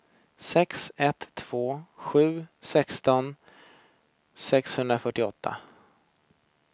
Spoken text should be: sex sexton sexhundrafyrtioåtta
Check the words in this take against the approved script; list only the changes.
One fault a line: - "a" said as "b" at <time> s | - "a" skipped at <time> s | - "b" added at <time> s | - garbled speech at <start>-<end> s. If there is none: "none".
- "ett två sju" added at 1.0 s